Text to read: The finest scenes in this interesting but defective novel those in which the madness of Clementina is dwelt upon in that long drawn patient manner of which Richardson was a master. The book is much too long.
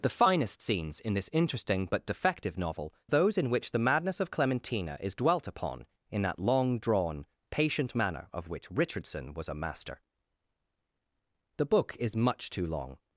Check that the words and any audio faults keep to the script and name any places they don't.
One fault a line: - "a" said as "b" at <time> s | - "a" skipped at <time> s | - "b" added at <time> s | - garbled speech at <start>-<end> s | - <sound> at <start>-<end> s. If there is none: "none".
none